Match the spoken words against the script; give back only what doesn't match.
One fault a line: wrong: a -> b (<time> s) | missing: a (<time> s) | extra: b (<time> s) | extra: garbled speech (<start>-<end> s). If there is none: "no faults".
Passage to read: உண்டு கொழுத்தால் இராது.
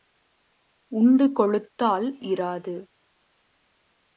no faults